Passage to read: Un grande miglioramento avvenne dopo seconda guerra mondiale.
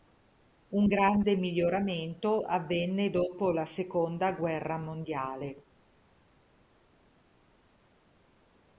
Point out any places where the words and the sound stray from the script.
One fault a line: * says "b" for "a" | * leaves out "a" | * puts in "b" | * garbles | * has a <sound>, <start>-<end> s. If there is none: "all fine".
* puts in "la"